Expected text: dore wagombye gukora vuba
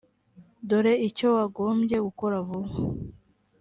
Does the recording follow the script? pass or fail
fail